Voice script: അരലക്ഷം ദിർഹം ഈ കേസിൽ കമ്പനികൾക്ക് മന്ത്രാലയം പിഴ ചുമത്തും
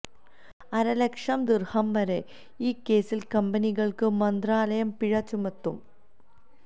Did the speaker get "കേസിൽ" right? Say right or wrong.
right